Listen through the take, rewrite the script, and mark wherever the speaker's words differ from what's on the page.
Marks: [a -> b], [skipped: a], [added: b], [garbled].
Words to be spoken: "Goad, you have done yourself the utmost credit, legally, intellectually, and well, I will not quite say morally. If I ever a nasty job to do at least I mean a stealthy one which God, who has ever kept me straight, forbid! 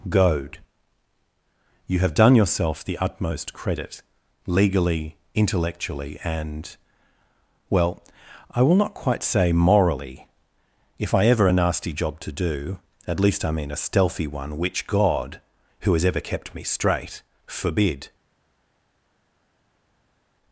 "Goad, you have done yourself the utmost credit, legally, intellectually, and well, I will not quite say morally. If I ever a nasty job to do at least I mean a stealthy one which God, who has ever kept me straight, forbid!